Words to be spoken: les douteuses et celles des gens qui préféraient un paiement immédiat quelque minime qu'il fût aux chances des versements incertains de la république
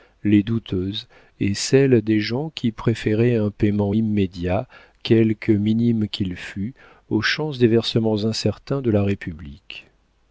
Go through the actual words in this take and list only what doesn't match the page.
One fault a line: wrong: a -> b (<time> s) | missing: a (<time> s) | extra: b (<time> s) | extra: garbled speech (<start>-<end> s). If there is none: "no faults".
no faults